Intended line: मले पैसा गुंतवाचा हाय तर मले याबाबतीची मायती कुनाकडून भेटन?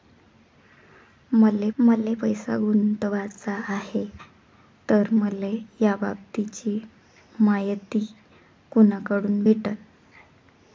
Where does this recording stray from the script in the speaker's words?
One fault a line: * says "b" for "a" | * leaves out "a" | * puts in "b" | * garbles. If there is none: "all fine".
* puts in "मले"